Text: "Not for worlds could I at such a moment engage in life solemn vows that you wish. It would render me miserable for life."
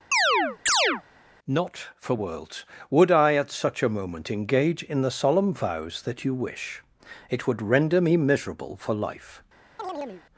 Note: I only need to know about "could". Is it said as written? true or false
false